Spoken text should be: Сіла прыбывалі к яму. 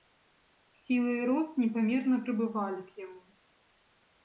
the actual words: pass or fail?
fail